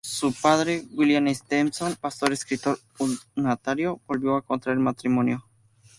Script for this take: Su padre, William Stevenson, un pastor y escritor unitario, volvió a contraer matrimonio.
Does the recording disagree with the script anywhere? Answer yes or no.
yes